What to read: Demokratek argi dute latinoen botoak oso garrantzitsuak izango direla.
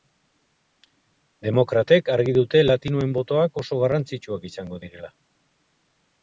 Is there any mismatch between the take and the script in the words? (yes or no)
no